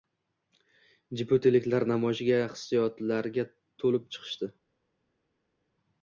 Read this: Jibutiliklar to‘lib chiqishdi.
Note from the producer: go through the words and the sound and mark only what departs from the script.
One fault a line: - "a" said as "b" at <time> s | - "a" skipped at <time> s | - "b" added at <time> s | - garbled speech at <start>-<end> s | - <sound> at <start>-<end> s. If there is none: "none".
- "namoyishga hissiyotlarga" added at 1.9 s